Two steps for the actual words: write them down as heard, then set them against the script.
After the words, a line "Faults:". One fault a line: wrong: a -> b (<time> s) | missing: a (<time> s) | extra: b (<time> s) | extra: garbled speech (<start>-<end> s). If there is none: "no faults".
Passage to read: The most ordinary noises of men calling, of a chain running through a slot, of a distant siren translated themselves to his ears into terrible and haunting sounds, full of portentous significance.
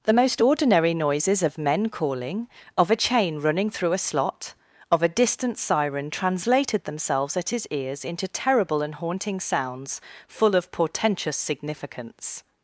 The most ordinary noises of men calling, of a chain running through a slot, of a distant siren translated themselves at his ears into terrible and haunting sounds, full of portentous significance.
Faults:
wrong: to -> at (7.4 s)